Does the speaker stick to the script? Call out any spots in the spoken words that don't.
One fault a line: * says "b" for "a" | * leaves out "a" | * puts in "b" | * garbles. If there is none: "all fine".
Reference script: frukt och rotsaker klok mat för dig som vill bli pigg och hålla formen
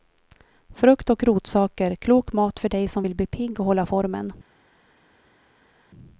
all fine